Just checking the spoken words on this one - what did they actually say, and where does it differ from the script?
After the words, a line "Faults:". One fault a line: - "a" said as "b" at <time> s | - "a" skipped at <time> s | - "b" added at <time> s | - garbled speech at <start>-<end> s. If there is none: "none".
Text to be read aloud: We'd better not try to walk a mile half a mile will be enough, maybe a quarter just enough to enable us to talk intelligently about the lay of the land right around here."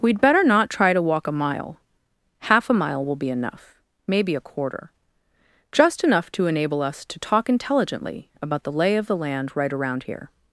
We'd better not try to walk a mile half a mile will be enough, maybe a quarter just enough to enable us to talk intelligently about the lay of the land right around here."
Faults:
none